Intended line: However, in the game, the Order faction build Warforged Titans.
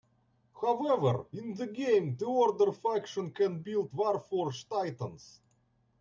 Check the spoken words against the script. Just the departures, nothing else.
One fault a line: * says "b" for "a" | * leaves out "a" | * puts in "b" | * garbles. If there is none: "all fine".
* puts in "can"